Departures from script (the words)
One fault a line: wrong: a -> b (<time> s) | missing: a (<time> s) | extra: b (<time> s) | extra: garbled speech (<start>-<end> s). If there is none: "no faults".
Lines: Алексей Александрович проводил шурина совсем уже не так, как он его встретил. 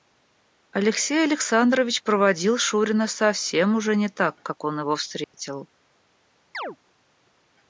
no faults